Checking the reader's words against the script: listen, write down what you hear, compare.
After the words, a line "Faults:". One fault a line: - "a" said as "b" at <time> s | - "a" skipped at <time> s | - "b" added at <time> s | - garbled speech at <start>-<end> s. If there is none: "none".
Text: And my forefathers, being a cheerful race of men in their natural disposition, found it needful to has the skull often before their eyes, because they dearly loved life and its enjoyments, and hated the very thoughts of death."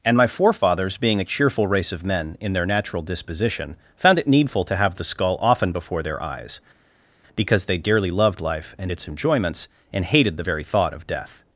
And my forefathers, being a cheerful race of men in their natural disposition, found it needful to have the skull often before their eyes, because they dearly loved life and its enjoyments, and hated the very thought of death."
Faults:
- "has" said as "have" at 4.8 s
- "thoughts" said as "thought" at 10.6 s